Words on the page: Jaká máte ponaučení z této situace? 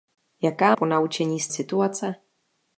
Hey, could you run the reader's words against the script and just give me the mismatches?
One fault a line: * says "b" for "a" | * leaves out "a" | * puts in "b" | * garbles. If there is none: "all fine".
* leaves out "máte"
* leaves out "této"